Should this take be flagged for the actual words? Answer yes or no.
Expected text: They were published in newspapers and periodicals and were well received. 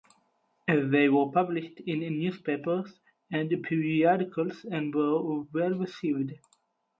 no